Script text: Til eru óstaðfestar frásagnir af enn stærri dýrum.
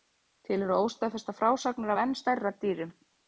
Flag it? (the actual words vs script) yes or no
no